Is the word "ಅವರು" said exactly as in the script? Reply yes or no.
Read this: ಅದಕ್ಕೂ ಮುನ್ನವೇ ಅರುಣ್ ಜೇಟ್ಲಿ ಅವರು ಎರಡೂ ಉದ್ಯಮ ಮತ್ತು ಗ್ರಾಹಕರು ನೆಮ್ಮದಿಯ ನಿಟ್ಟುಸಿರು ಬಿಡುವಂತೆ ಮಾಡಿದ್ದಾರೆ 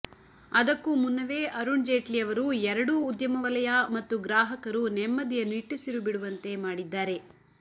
yes